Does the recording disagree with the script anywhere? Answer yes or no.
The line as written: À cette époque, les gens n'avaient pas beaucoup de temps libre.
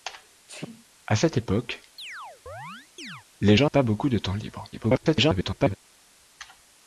yes